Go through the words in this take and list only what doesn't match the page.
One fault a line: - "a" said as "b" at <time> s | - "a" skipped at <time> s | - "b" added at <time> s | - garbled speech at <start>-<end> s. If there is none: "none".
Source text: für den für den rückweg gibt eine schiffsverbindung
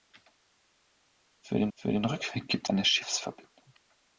none